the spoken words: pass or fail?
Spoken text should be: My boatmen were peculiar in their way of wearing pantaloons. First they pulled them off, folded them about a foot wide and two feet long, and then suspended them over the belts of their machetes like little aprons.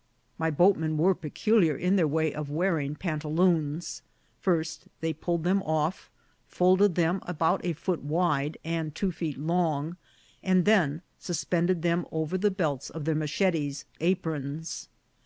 fail